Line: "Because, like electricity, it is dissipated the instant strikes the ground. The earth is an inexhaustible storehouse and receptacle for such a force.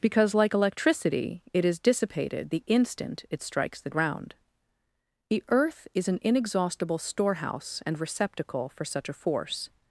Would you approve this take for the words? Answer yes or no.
no